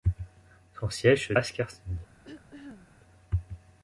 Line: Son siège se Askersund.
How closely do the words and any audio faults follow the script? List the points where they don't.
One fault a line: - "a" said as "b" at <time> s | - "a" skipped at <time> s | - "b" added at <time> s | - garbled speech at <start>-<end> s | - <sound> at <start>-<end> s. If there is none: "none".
- throat clearing at 2.2-3.0 s